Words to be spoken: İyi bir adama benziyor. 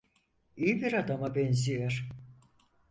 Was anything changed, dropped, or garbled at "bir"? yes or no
no